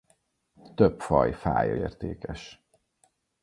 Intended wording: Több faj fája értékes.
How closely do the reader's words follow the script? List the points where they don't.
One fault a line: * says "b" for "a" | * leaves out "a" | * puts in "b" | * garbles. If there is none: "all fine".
all fine